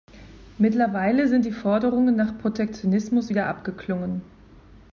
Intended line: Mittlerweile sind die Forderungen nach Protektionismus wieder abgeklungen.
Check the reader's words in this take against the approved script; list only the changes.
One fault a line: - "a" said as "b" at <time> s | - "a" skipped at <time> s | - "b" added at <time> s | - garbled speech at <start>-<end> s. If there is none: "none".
none